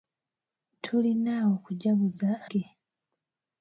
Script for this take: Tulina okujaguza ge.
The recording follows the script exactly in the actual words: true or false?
true